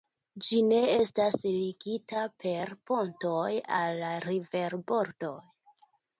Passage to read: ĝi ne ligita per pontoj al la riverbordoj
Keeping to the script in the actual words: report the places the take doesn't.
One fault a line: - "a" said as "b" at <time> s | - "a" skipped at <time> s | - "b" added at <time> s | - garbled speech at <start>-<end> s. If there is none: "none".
- "estas" added at 0.9 s